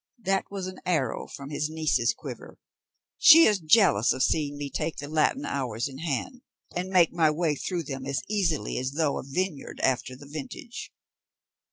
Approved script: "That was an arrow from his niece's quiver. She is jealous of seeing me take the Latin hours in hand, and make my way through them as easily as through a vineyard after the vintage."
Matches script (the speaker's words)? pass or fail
pass